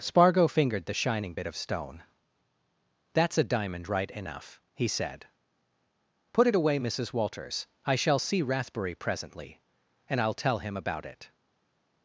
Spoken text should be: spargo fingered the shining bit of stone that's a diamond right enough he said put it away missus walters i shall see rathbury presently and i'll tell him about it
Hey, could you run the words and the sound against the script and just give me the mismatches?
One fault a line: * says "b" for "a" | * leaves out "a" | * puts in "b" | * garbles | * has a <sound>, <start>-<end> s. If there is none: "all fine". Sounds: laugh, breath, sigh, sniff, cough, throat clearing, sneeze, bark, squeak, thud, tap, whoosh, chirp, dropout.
all fine